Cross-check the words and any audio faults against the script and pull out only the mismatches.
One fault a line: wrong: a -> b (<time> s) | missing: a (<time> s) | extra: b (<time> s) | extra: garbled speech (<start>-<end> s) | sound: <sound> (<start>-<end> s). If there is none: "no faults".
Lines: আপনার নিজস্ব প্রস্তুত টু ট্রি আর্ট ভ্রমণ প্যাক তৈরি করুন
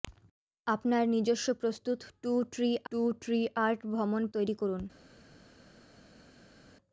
extra: টু ট্রি (2.9 s)
missing: প্যাক (4.2 s)